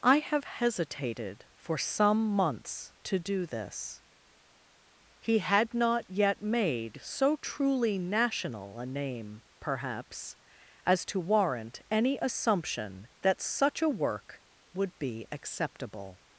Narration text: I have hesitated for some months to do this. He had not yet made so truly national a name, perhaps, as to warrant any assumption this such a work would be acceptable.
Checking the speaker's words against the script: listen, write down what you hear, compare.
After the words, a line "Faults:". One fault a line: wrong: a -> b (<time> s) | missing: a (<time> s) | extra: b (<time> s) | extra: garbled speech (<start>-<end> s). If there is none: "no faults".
I have hesitated for some months to do this. He had not yet made so truly national a name, perhaps, as to warrant any assumption that such a work would be acceptable.
Faults:
wrong: this -> that (13.2 s)